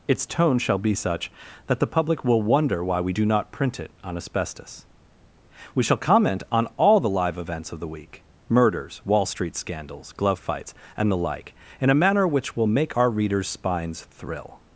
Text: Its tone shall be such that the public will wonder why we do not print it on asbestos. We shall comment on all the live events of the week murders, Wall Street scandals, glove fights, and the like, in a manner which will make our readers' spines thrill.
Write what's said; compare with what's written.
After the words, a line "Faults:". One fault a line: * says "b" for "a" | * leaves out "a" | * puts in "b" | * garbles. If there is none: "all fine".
Its tone shall be such that the public will wonder why we do not print it on asbestos. We shall comment on all the live events of the week murders, Wall Street scandals, glove fights, and the like, in a manner which will make our readers' spines thrill.
Faults:
all fine